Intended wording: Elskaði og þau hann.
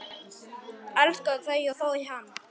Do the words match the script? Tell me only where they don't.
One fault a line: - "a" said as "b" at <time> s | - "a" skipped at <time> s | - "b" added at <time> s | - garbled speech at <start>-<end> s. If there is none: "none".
- "þau" added at 1.5 s